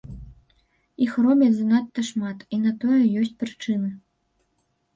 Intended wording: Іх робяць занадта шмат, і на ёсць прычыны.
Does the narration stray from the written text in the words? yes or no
yes